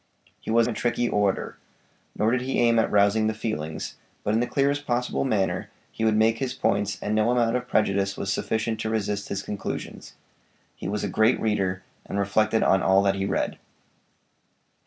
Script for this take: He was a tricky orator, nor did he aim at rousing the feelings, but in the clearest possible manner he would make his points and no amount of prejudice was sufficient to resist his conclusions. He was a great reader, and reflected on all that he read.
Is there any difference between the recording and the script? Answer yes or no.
no